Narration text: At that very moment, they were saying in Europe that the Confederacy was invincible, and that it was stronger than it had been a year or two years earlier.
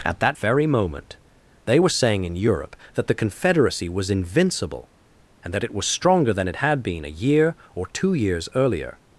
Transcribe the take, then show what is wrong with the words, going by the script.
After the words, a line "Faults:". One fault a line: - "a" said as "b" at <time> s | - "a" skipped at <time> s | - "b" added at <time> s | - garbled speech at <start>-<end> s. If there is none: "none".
At that very moment, they were saying in Europe that the Confederacy was invincible, and that it was stronger than it had been a year or two years earlier.
Faults:
none